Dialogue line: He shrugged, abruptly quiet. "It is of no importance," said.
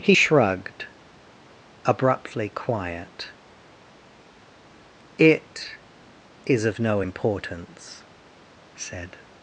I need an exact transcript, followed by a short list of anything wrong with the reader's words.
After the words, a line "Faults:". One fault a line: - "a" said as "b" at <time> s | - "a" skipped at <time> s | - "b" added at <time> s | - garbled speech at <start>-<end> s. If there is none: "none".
He shrugged, abruptly quiet. "It is of no importance," said.
Faults:
none